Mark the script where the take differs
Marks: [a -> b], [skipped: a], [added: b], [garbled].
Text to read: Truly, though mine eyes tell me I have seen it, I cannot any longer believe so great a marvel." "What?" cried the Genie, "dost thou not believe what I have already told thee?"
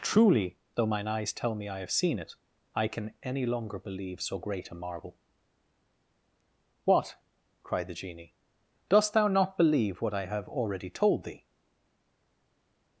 Truly, though mine eyes tell me I have seen it, I [cannot -> can] any longer believe so great a marvel." "What?" cried the Genie, "dost thou not believe what I have already told thee?"